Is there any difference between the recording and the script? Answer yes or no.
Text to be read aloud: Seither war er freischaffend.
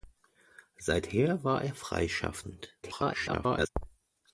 yes